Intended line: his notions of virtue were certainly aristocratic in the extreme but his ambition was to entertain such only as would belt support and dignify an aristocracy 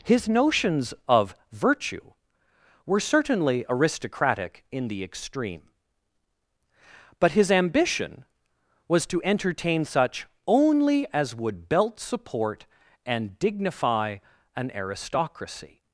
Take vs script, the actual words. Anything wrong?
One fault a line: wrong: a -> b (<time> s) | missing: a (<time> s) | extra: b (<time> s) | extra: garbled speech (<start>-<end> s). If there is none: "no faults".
no faults